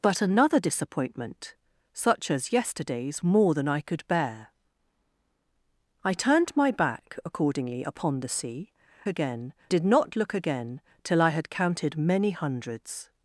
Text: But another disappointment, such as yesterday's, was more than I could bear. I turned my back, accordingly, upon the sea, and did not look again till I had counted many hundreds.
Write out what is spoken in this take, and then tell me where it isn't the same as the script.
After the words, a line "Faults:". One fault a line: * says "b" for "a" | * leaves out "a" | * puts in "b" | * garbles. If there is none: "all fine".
But another disappointment, such as yesterday's, more than I could bear. I turned my back, accordingly, upon the sea, again did not look again till I had counted many hundreds.
Faults:
* leaves out "was"
* says "again" for "and"